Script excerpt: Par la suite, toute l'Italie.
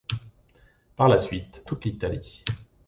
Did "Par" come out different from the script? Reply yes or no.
no